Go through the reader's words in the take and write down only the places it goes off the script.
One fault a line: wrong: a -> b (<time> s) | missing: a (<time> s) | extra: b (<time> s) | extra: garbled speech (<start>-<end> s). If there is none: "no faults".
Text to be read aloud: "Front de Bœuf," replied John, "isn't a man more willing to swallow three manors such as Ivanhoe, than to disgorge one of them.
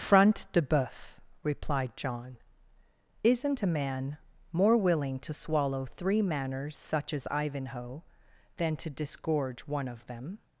no faults